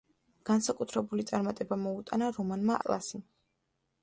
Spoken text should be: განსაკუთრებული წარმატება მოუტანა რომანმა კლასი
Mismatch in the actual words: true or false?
false